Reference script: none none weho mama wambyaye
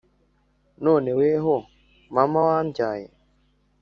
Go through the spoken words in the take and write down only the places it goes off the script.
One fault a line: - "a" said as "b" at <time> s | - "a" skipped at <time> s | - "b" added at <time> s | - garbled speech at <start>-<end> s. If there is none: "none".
- "none" skipped at 1.1 s